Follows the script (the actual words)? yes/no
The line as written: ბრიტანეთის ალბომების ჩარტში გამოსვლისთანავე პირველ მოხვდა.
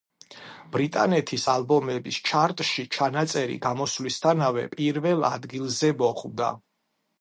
no